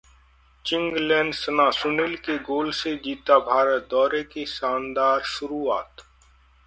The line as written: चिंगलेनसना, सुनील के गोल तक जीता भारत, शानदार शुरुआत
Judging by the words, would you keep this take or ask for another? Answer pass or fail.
fail